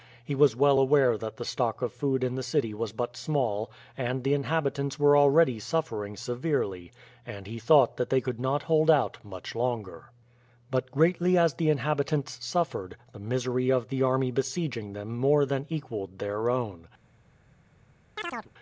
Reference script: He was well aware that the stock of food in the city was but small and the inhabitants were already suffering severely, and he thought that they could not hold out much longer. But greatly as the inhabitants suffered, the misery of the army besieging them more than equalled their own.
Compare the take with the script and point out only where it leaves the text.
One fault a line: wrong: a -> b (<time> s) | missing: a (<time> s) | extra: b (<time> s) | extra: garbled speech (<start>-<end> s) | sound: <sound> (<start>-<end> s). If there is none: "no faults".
sound: chirp (18.2-18.5 s)